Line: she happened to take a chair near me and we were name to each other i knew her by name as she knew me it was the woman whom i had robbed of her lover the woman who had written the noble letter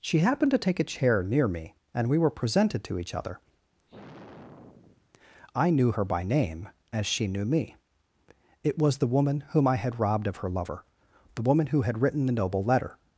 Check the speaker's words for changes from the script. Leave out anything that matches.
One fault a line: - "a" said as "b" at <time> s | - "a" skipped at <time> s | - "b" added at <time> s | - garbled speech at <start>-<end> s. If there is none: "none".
- "name" said as "presented" at 2.3 s